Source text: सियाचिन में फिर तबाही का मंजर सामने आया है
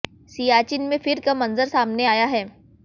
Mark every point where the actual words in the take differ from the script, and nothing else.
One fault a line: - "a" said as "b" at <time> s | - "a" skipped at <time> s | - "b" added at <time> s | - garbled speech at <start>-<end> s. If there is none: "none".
- "तबाही" skipped at 1.2 s